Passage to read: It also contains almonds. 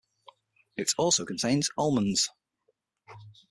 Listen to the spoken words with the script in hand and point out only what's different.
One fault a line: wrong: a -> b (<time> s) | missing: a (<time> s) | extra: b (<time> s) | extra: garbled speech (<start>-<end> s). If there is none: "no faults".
no faults